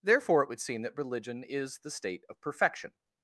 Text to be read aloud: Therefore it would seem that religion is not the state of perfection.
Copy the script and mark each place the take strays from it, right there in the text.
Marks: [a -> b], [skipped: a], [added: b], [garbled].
Therefore it would seem that religion is [skipped: not] the state of perfection.